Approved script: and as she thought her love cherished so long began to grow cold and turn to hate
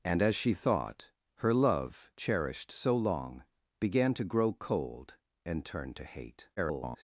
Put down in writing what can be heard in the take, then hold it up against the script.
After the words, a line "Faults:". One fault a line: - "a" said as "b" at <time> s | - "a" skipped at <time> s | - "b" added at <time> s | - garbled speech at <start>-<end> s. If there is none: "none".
and as she thought her love cherished so long began to grow cold and turn to hate [garbled]
Faults:
- garbled speech at 6.6-7.0 s